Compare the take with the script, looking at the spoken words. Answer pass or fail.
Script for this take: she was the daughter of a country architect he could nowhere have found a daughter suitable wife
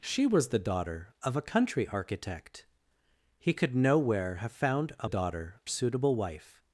pass